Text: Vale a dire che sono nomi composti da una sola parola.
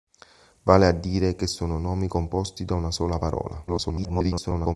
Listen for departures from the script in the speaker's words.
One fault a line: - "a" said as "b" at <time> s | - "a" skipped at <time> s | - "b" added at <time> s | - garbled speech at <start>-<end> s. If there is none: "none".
- garbled speech at 3.7-4.8 s